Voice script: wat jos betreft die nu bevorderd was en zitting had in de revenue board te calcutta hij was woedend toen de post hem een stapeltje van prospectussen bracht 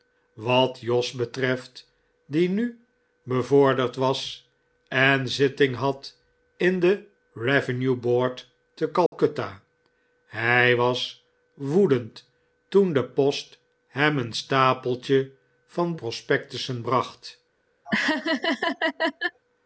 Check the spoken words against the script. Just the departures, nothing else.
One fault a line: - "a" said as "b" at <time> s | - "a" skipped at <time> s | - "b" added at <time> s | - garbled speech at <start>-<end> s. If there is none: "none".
none